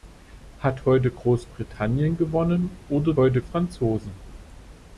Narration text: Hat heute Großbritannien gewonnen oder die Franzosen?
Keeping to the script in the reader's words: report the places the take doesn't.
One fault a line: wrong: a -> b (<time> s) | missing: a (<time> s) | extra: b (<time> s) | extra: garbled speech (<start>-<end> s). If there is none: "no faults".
wrong: die -> heute (3.2 s)